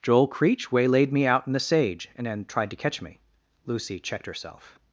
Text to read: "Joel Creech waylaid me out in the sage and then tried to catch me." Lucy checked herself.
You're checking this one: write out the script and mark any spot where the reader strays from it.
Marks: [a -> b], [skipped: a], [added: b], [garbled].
"Joel Creech waylaid me out in the sage and then tried to catch me." Lucy checked herself.